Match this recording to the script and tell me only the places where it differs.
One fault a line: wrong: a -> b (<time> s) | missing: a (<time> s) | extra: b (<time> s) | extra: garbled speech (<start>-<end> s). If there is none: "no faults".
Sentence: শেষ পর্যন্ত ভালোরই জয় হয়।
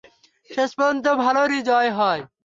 no faults